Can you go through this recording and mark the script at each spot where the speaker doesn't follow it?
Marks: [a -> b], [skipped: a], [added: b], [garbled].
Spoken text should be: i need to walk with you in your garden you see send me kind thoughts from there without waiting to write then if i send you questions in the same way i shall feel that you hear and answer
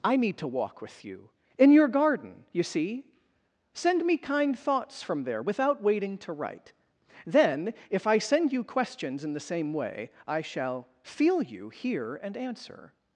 i need to walk with you in your garden you see send me kind thoughts from there without waiting to write then if i send you questions in the same way i shall feel [skipped: that] you hear and answer